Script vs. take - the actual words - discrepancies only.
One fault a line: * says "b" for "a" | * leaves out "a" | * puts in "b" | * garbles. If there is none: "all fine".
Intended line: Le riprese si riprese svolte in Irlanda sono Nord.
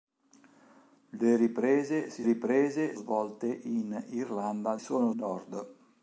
all fine